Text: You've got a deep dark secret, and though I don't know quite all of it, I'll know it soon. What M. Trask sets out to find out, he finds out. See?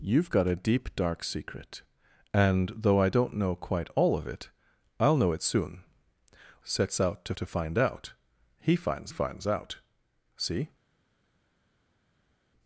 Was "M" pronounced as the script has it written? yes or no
no